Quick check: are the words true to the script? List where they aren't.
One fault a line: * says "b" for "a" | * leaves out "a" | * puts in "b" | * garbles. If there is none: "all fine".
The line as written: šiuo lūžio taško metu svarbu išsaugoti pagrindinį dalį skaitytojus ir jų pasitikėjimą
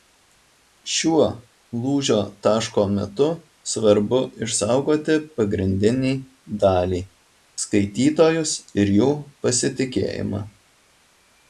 all fine